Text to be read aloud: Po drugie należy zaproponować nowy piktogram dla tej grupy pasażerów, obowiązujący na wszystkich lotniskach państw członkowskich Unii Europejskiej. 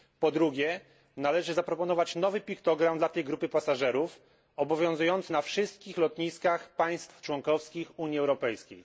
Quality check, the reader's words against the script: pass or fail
pass